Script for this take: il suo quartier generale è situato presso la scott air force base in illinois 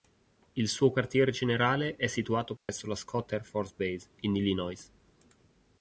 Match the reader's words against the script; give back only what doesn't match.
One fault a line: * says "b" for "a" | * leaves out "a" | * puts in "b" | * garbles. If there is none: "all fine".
all fine